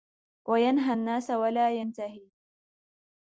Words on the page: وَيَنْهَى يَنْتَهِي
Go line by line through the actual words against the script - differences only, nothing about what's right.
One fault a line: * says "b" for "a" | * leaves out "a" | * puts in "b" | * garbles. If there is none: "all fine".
* puts in "النَّاسَ وَلَا"